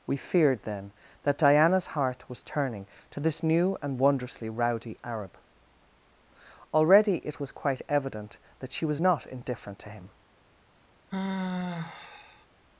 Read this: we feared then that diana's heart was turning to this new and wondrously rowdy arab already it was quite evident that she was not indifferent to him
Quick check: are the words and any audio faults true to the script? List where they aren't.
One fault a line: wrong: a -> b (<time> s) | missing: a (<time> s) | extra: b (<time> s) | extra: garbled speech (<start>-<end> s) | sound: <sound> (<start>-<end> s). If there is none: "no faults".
sound: sigh (11.1-12.5 s)